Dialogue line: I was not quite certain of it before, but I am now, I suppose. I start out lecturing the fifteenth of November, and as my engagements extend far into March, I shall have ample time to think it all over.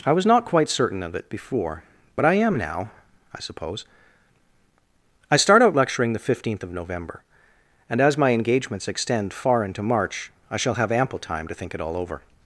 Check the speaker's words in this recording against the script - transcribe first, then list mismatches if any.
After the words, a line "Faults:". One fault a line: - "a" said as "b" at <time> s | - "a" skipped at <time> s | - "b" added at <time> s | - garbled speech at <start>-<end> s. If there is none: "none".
I was not quite certain of it before, but I am now, I suppose. I start out lecturing the fifteenth of November, and as my engagements extend far into March, I shall have ample time to think it all over.
Faults:
none